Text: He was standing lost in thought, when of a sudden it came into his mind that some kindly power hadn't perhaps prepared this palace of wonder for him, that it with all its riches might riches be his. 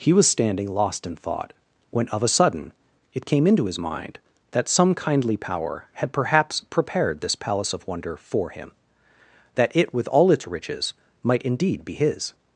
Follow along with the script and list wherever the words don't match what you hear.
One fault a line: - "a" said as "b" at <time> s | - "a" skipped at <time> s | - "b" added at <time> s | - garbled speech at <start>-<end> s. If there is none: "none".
- "hadn't" said as "had" at 5.9 s
- "riches" said as "indeed" at 11.4 s